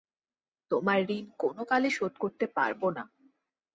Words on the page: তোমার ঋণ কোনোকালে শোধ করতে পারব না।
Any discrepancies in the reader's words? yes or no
no